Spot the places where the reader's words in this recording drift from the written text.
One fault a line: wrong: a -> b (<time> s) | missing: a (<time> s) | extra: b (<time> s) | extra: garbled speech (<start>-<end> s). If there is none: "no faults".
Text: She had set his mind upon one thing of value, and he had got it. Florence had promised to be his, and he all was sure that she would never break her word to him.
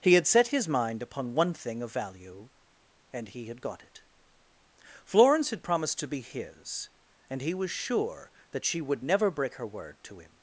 wrong: She -> He (0.0 s)
missing: all (7.5 s)